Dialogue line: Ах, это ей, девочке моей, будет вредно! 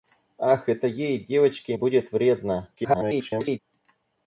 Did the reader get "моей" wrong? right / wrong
wrong